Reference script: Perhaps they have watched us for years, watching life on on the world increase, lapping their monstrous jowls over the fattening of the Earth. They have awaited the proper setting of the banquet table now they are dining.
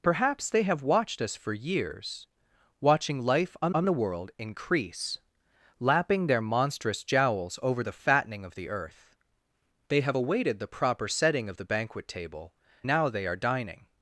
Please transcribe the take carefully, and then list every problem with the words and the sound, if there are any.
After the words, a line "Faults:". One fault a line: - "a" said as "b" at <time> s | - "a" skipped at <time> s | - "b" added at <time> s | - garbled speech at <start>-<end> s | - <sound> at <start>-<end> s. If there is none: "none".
Perhaps they have watched us for years, watching life on on the world increase, lapping their monstrous jowls over the fattening of the Earth. They have awaited the proper setting of the banquet table now they are dining.
Faults:
none